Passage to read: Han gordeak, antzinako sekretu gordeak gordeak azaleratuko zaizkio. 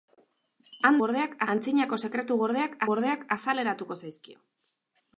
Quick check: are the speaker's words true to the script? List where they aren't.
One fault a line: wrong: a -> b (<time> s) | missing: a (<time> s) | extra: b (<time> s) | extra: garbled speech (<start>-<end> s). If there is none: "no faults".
no faults